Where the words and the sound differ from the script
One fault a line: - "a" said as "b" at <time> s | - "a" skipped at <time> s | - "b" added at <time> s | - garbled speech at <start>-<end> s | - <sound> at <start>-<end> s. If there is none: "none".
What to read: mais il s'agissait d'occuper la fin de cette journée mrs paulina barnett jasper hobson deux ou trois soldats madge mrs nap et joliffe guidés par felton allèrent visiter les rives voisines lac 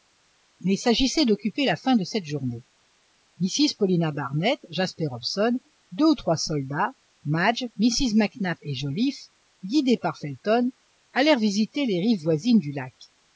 - "mac" added at 8.2 s
- "du" added at 12.6 s